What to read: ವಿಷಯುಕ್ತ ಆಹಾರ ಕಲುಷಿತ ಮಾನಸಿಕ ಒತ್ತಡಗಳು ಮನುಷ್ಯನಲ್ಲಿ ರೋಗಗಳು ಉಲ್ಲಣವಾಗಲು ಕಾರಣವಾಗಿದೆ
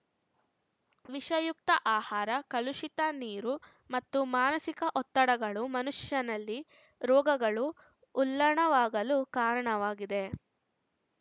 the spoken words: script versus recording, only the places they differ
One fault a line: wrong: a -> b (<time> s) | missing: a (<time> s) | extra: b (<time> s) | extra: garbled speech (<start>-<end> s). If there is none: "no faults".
extra: ನೀರು ಮತ್ತು (3.2 s)